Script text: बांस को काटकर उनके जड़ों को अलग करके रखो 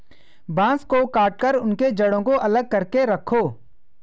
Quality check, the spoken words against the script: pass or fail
pass